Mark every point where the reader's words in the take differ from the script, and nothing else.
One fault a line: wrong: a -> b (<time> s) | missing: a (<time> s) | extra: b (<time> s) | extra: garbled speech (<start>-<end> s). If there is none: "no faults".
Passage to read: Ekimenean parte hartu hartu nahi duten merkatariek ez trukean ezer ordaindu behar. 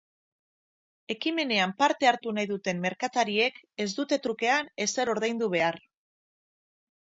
missing: hartu (2.3 s)
extra: dute (4.0 s)